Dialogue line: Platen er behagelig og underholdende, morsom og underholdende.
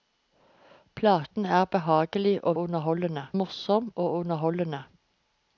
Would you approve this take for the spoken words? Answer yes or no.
yes